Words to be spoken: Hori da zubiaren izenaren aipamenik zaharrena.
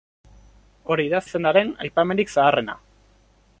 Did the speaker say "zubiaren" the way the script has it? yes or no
no